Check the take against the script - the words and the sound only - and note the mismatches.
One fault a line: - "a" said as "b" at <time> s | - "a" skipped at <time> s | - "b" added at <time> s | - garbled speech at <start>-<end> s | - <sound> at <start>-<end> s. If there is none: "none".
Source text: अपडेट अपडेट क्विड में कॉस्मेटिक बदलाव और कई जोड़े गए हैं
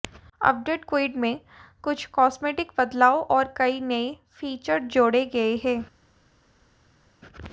- "अपडेट" skipped at 0.9 s
- "कुछ" added at 1.8 s
- "नए फीचर" added at 3.8 s